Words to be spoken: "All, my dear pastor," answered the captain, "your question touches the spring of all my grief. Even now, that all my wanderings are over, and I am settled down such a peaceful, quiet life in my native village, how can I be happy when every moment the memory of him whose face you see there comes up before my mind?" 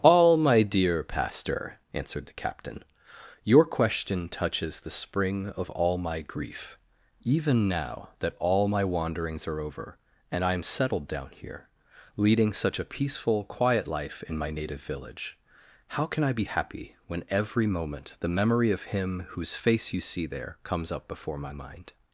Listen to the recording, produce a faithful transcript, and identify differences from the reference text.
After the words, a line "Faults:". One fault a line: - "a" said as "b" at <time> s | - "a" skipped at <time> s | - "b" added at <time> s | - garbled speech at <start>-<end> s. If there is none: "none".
"All, my dear pastor," answered the captain, "your question touches the spring of all my grief. Even now, that all my wanderings are over, and I am settled down here, leading such a peaceful, quiet life in my native village, how can I be happy when every moment the memory of him whose face you see there comes up before my mind?"
Faults:
- "here leading" added at 11.3 s